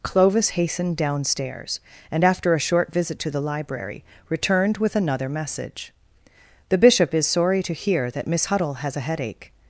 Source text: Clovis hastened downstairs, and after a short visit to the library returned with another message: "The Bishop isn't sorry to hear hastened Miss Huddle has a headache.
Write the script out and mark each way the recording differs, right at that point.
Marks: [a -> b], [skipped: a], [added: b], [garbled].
Clovis hastened downstairs, and after a short visit to the library returned with another message: "The Bishop [isn't -> is] sorry to hear [hastened -> that] Miss Huddle has a headache.